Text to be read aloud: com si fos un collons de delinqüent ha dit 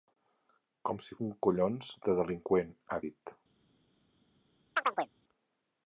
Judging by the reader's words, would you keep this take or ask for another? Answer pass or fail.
fail